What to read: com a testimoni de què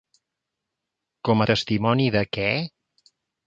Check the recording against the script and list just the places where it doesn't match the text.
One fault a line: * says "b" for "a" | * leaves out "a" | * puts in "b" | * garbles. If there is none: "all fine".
all fine